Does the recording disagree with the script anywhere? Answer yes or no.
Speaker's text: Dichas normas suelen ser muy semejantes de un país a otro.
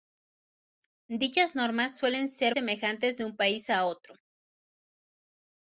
yes